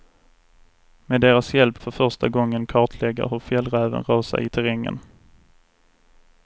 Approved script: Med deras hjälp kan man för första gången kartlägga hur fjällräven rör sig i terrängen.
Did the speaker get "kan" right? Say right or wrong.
wrong